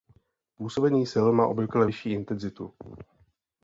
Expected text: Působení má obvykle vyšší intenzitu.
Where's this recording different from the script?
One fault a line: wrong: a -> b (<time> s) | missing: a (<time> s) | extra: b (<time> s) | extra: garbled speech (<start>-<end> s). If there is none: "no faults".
extra: sil (1.1 s)